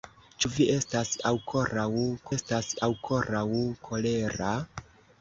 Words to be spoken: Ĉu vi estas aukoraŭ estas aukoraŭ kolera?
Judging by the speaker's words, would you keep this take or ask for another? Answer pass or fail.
pass